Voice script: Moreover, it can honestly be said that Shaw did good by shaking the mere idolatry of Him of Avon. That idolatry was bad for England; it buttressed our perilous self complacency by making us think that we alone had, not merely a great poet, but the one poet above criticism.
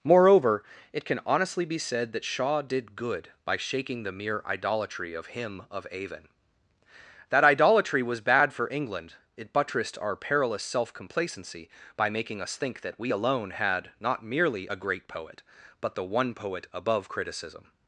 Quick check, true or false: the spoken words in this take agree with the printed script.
true